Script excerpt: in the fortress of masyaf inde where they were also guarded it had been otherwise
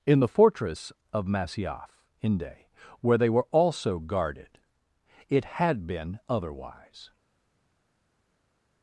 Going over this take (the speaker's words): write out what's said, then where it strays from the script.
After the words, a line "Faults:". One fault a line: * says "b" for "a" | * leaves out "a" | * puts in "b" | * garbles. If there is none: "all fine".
in the fortress of masyaf inde where they were also guarded it had been otherwise
Faults:
all fine